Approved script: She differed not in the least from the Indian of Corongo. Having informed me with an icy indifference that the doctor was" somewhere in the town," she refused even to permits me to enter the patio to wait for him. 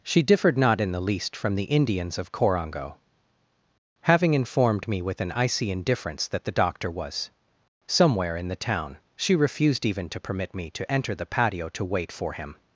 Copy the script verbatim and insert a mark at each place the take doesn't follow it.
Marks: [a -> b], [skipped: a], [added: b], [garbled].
She differed not in the least from the [Indian -> Indians] of Corongo. Having informed me with an icy indifference that the doctor was" somewhere in the town," she refused even to [permits -> permit] me to enter the patio to wait for him.